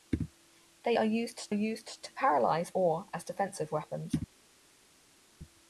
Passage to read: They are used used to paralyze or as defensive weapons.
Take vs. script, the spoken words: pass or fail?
pass